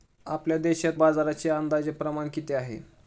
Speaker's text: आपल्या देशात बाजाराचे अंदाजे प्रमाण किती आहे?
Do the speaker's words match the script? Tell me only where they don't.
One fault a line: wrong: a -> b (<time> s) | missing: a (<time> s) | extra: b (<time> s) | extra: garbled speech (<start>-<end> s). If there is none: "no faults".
no faults